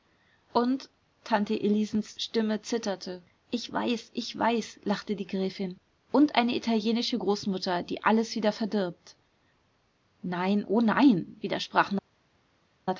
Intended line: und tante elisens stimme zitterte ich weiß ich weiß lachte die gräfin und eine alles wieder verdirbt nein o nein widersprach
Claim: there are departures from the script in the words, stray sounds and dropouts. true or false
true